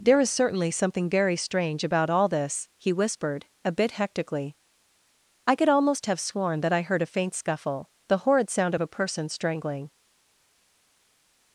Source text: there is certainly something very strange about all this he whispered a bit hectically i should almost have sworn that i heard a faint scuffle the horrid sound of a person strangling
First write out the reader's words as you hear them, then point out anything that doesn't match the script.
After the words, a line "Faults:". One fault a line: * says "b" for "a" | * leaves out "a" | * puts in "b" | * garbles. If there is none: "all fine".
there is certainly something very strange about all this he whispered a bit hectically i could almost have sworn that i heard a faint scuffle the horrid sound of a person strangling
Faults:
* says "could" for "should"